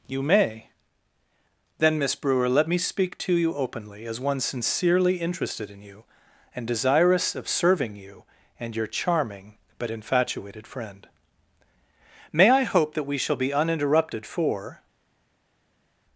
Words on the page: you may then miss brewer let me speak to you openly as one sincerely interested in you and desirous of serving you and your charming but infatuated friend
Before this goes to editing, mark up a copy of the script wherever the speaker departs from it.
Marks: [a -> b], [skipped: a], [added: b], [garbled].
you may then miss brewer let me speak to you openly as one sincerely interested in you and desirous of serving you and your charming but infatuated friend [added: may i hope that we shall be uninterrupted for]